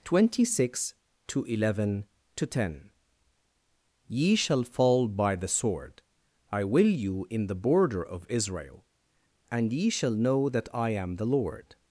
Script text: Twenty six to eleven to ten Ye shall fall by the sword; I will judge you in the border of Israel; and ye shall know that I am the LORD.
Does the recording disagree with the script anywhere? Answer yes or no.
yes